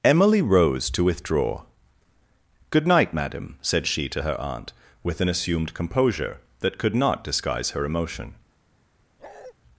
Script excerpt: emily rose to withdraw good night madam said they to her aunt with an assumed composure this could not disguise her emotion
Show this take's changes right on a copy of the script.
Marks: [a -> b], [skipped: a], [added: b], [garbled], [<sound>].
emily rose to withdraw good night madam said [they -> she] to her aunt with an assumed composure [this -> that] could not disguise her emotion [bark]